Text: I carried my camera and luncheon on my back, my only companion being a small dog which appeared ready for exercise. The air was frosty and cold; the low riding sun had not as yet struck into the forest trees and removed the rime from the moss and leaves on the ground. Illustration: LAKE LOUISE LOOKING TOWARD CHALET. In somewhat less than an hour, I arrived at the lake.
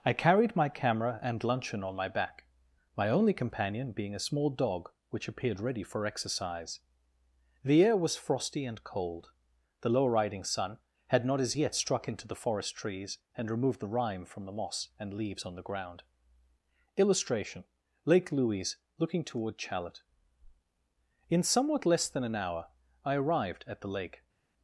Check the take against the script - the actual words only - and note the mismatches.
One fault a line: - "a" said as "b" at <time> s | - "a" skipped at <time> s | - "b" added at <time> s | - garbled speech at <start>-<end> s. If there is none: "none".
none